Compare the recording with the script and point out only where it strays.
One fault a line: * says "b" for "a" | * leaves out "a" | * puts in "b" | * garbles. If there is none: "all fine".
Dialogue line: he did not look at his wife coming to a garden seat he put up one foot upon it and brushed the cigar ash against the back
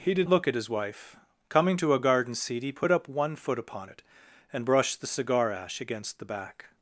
* leaves out "not"